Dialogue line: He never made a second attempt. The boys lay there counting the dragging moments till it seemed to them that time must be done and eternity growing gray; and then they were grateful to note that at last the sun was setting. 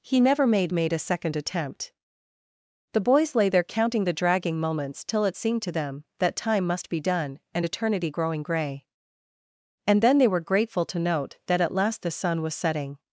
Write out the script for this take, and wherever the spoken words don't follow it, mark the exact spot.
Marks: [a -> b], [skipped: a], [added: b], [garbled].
He never made [added: made] a second attempt. The boys lay there counting the dragging moments till it seemed to them that time must be done and eternity growing gray; and then they were grateful to note that at last the sun was setting.